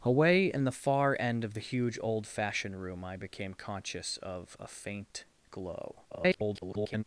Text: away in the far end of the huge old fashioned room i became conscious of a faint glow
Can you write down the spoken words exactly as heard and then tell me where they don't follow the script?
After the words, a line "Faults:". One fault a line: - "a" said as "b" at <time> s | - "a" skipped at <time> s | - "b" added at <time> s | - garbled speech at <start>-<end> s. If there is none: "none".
away in the far end of the huge old fashioned room i became conscious of a faint glow [garbled]
Faults:
- garbled speech at 6.1-7.0 s